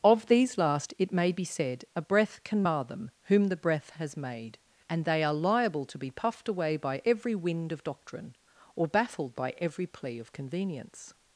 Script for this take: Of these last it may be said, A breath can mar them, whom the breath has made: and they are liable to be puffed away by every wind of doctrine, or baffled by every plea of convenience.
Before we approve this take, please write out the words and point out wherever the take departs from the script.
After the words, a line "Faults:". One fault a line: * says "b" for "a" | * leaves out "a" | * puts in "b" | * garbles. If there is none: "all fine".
Of these last it may be said, A breath can mar them, whom the breath has made: and they are liable to be puffed away by every wind of doctrine, or baffled by every plea of convenience.
Faults:
all fine